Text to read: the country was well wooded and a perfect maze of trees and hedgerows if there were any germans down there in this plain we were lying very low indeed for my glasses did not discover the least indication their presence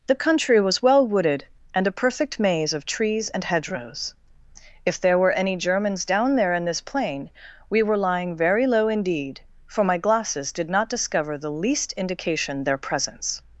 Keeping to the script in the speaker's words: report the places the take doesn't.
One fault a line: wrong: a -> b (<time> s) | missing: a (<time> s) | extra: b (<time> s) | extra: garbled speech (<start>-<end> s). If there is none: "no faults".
no faults